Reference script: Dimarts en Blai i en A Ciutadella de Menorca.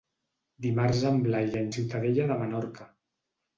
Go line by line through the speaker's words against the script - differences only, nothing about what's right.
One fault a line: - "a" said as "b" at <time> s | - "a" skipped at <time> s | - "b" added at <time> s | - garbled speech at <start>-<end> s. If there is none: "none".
none